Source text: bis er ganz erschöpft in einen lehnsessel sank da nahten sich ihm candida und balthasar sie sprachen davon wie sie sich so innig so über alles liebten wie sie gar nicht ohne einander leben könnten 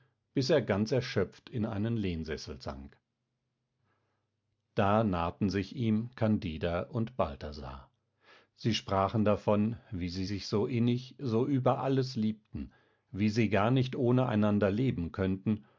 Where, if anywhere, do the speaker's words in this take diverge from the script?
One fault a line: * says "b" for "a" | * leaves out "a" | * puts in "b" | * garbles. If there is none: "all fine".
all fine